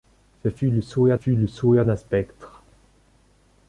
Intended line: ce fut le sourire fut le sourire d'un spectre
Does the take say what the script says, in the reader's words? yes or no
yes